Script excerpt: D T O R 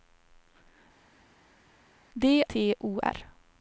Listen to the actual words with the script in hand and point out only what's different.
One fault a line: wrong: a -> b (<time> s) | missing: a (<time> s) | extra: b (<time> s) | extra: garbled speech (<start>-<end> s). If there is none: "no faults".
no faults